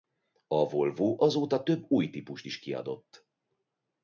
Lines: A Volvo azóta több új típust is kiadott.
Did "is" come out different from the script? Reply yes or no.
no